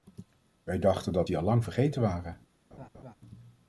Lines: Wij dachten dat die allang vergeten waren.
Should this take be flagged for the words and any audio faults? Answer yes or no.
yes